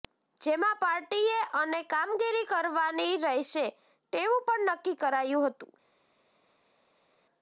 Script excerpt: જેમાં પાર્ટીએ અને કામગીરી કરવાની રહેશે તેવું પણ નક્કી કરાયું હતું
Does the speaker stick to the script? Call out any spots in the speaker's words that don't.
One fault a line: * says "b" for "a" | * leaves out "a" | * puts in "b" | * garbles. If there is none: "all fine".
all fine